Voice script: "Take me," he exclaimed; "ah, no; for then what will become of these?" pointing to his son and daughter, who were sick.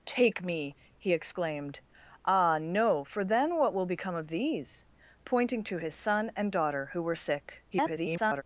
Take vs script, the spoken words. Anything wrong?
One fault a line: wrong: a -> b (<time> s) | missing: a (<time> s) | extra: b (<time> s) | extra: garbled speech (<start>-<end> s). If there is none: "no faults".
extra: garbled speech (7.7-8.4 s)